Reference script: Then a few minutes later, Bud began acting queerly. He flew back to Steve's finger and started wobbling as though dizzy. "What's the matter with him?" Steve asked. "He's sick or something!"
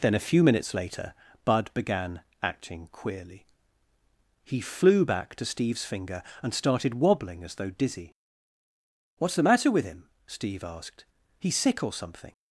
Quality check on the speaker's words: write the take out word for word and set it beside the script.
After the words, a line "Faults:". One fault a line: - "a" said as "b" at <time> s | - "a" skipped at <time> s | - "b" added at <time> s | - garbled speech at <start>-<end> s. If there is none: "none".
Then a few minutes later, Bud began acting queerly. He flew back to Steve's finger and started wobbling as though dizzy. "What's the matter with him?" Steve asked. "He's sick or something!"
Faults:
none